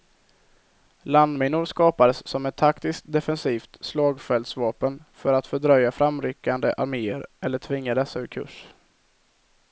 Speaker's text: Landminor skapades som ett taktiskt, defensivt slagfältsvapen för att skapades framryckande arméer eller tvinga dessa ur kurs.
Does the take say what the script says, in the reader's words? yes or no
no